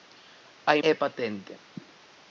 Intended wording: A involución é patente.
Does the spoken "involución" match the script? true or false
false